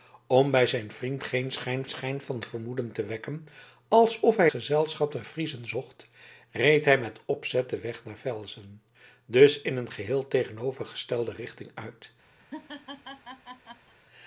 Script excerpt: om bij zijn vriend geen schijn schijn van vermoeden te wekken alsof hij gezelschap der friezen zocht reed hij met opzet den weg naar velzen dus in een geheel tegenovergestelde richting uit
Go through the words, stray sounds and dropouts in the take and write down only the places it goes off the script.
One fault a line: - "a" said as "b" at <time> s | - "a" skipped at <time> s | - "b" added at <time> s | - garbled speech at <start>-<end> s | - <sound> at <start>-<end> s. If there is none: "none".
- laugh at 12.4-14.0 s